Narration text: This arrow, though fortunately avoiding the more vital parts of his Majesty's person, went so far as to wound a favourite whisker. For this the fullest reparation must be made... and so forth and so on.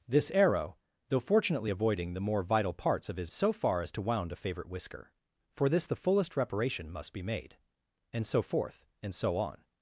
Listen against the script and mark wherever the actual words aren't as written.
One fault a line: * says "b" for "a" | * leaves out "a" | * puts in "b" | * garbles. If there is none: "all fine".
* leaves out "Majesty's person went"